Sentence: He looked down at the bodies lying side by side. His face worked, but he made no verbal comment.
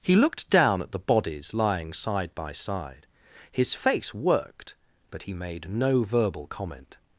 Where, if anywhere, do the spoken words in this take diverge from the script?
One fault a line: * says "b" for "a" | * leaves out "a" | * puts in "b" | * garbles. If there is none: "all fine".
all fine